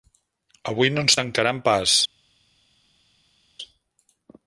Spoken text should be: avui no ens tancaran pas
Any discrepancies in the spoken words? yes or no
no